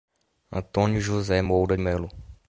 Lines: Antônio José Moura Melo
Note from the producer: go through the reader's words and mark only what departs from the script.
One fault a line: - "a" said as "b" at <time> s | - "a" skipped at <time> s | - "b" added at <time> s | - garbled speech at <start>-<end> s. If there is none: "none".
none